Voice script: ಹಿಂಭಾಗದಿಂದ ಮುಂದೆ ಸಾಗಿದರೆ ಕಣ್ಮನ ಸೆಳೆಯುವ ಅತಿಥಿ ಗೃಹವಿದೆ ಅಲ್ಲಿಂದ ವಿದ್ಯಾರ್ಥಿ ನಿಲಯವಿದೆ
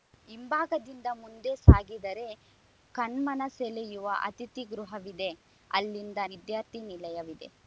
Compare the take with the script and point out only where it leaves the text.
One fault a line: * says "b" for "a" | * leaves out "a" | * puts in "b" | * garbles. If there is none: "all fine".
all fine